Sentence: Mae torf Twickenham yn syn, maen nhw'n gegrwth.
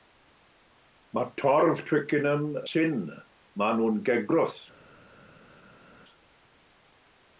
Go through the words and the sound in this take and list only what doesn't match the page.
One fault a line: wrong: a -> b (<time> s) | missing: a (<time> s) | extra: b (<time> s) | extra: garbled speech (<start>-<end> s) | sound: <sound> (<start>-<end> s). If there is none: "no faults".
missing: yn (2.5 s)